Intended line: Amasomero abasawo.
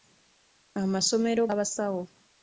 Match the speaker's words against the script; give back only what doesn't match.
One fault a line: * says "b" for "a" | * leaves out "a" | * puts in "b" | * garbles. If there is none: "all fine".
all fine